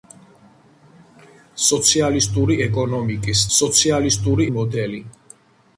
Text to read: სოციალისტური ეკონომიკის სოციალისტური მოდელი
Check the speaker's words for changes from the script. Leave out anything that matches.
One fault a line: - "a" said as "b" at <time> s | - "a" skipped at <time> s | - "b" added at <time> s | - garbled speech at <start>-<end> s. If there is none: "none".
none